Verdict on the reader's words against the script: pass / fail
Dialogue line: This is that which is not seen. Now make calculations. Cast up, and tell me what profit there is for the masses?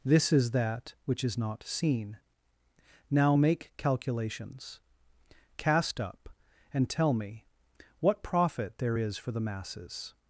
pass